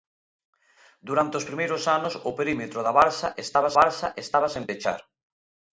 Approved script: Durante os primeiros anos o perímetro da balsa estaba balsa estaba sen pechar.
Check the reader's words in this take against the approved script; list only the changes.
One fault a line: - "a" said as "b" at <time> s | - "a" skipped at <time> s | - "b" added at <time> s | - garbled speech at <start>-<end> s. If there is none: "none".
none